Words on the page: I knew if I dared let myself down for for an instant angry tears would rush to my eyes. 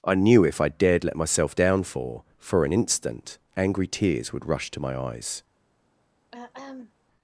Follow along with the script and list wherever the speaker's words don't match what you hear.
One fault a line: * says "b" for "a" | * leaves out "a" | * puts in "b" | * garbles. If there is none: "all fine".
all fine